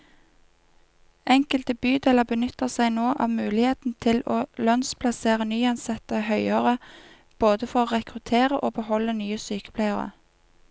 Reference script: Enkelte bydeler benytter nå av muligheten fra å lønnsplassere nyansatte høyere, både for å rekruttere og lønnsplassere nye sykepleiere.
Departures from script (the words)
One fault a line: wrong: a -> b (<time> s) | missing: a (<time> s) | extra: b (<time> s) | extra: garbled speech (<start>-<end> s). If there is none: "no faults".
extra: seg (2.7 s)
wrong: fra -> til (4.1 s)
wrong: lønnsplassere -> beholde (8.8 s)